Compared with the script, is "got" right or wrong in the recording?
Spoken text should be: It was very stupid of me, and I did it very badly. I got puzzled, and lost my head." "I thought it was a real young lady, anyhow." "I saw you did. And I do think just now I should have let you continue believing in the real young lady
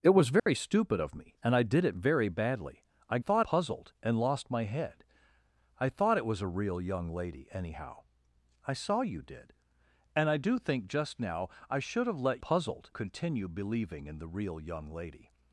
wrong